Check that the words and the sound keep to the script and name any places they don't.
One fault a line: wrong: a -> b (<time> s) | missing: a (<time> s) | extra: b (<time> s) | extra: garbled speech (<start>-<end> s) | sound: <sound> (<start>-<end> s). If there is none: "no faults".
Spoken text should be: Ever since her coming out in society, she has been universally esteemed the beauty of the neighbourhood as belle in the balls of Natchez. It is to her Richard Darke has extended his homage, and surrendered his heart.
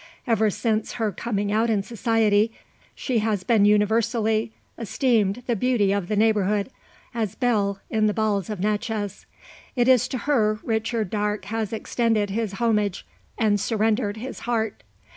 no faults